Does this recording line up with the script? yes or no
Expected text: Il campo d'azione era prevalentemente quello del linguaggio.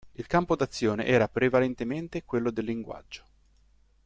yes